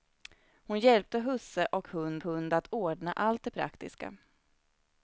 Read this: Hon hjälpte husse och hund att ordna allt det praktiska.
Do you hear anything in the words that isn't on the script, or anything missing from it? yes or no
yes